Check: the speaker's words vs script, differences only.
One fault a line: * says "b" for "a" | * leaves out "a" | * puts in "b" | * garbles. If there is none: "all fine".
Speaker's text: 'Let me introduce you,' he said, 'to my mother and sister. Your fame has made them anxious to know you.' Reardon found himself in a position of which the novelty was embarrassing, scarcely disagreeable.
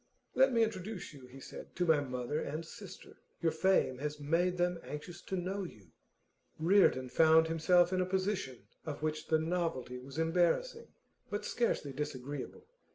* puts in "but"